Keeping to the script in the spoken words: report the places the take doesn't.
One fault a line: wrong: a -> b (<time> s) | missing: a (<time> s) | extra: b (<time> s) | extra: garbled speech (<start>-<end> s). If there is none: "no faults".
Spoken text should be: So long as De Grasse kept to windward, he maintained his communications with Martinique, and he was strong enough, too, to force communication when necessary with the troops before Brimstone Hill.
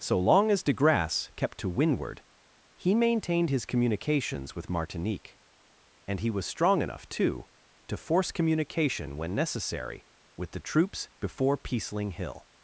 wrong: Brimstone -> Peaceling (11.6 s)